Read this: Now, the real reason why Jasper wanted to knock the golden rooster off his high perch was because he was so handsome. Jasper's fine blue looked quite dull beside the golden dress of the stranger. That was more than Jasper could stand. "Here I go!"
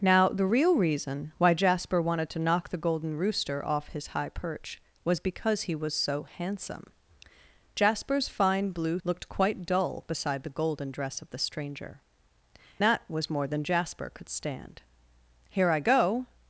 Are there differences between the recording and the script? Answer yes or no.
no